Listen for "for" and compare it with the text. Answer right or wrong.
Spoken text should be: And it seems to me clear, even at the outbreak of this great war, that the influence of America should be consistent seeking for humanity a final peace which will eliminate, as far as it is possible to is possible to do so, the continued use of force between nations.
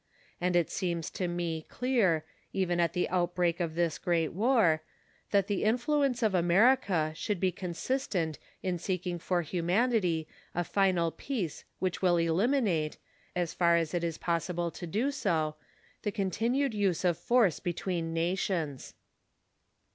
right